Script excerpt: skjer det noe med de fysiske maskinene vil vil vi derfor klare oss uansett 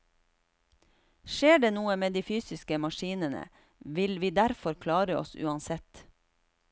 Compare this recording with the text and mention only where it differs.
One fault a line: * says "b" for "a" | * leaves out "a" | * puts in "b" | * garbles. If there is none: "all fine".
* leaves out "vil"